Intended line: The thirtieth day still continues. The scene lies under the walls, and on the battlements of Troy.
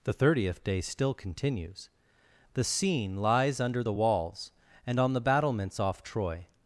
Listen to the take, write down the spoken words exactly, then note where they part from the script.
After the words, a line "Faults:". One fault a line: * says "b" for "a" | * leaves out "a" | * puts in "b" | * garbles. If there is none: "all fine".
The thirtieth day still continues. The scene lies under the walls, and on the battlements off Troy.
Faults:
* says "off" for "of"